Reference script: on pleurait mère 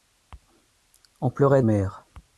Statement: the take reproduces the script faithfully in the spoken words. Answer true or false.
true